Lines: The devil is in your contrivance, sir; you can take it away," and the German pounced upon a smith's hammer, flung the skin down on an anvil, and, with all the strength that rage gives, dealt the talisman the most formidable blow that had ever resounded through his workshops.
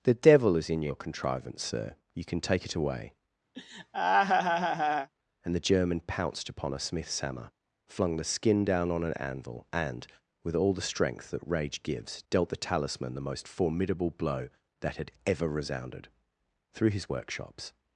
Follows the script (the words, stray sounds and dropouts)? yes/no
no